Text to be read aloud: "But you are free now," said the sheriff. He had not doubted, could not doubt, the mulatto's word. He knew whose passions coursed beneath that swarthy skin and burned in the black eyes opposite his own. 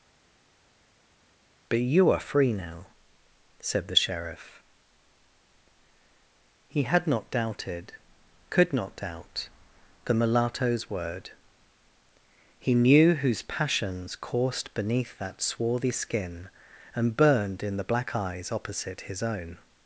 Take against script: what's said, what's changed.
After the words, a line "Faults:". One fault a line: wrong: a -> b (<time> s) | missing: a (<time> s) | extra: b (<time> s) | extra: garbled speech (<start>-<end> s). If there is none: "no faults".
"But you are free now," said the sheriff. He had not doubted, could not doubt, the mulatto's word. He knew whose passions coursed beneath that swarthy skin and burned in the black eyes opposite his own.
Faults:
no faults